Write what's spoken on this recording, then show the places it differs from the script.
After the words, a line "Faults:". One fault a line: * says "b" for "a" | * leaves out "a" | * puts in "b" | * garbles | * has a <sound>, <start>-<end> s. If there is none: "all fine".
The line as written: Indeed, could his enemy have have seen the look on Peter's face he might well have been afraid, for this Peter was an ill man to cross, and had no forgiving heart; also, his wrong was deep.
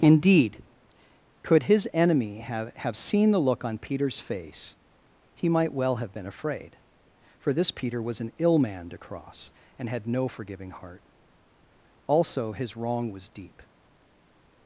Indeed, could his enemy have have seen the look on Peter's face he might well have been afraid, for this Peter was an ill man to cross, and had no forgiving heart; also, his wrong was deep.
Faults:
all fine